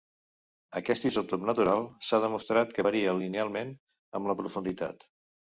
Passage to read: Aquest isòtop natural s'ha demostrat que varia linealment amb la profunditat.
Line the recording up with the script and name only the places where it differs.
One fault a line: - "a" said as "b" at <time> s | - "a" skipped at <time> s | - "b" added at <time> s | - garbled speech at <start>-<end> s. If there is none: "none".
none